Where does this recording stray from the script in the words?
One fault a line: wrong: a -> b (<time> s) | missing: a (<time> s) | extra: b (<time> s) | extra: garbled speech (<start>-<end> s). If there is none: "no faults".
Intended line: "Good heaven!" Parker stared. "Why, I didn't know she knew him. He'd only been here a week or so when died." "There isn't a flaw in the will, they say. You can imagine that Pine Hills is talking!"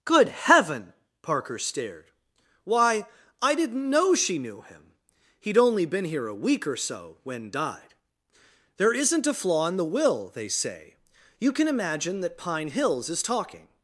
no faults